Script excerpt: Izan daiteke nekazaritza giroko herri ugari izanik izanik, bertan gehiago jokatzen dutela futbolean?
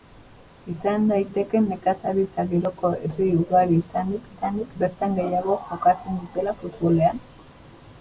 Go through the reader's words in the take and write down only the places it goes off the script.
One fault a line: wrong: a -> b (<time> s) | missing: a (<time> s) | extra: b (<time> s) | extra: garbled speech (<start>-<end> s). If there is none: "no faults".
no faults